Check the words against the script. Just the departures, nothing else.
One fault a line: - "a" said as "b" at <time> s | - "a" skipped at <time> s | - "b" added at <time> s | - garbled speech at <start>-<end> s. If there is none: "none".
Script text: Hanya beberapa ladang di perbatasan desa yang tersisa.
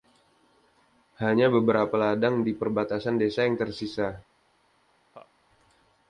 none